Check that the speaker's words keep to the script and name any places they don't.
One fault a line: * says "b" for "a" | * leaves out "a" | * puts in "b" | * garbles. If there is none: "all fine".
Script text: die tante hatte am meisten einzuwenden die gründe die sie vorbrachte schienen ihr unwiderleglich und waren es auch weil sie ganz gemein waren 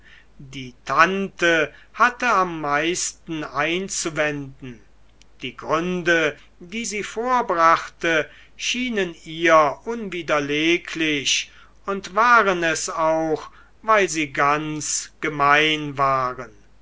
all fine